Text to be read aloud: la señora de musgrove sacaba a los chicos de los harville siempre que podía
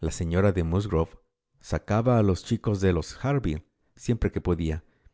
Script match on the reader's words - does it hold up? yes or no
yes